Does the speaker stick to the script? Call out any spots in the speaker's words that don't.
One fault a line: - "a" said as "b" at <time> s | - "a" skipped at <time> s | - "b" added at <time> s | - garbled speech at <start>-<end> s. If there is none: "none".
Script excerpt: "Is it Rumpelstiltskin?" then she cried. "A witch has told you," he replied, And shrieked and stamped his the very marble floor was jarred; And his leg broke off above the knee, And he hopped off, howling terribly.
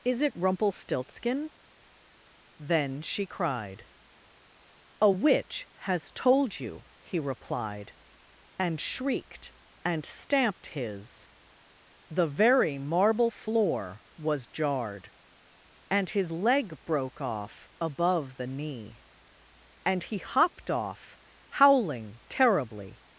none